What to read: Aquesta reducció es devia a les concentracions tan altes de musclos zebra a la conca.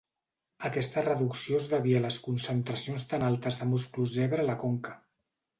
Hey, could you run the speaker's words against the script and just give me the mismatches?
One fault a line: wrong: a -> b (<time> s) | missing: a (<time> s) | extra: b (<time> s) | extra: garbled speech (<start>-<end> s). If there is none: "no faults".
no faults